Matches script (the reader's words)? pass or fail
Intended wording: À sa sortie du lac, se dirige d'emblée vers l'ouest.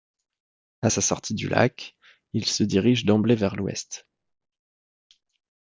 fail